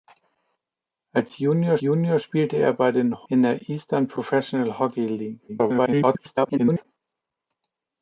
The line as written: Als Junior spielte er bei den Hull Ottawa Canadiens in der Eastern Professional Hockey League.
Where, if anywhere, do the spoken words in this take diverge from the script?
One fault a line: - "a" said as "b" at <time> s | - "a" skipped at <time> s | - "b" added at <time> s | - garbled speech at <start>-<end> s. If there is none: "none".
- "Junior" added at 1.8 s
- "Hull Ottawa Canadiens" skipped at 3.3 s
- garbled speech at 5.5-6.8 s